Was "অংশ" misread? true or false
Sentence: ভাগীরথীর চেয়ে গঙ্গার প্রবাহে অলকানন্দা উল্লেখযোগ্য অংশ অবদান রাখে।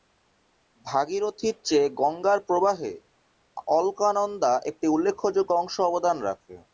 false